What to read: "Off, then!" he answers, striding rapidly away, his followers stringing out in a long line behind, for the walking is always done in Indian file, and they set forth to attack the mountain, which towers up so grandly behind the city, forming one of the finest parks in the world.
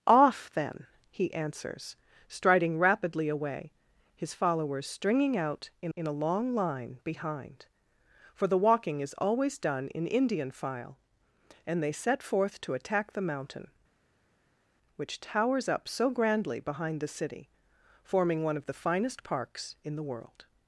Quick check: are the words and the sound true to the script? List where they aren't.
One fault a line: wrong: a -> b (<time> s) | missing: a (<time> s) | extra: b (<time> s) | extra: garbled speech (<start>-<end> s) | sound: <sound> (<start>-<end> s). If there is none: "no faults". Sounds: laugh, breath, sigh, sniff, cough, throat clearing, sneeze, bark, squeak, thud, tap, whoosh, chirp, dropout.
extra: in (5.9 s)